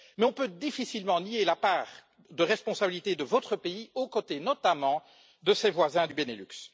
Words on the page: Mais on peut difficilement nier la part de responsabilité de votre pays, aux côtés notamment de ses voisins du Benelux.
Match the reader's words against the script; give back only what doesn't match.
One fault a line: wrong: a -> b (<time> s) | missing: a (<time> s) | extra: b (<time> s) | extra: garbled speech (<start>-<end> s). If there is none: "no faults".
no faults